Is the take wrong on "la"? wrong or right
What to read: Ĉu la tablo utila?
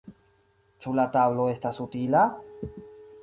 right